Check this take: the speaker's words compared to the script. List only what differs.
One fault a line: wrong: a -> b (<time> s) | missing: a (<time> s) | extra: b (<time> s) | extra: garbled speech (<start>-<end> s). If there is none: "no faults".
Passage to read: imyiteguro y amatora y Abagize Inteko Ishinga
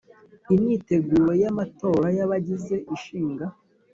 missing: Inteko (2.8 s)